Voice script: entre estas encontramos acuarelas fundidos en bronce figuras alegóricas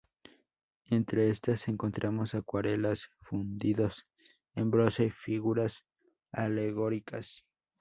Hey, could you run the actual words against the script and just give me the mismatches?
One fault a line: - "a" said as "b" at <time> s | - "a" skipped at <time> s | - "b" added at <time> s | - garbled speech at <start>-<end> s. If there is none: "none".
none